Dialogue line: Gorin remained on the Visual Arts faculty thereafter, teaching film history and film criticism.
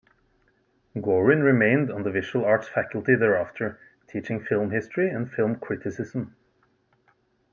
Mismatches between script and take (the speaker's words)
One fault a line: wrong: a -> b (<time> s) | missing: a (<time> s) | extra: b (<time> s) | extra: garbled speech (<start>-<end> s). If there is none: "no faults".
no faults